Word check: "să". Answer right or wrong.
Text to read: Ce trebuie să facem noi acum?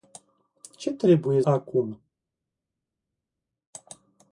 wrong